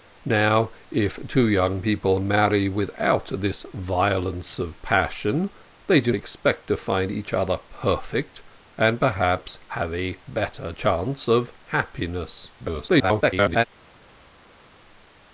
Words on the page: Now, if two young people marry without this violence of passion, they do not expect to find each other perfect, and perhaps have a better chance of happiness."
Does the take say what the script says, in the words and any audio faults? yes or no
no